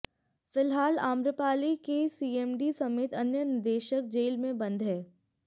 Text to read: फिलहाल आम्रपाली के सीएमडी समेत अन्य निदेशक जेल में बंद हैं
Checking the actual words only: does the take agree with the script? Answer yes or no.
yes